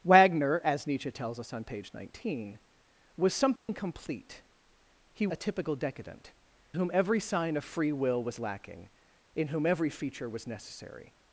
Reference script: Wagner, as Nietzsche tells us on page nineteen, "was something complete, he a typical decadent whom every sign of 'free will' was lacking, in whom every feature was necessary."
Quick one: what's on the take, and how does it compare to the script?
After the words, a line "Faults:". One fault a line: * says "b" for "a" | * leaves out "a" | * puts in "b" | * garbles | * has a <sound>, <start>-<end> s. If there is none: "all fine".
Wagner, as Nietzsche tells us on page nineteen, "was something complete, he a typical decadent whom every sign of 'free will' was lacking, in whom every feature was necessary."
Faults:
* has a dropout, 3.6-3.7 s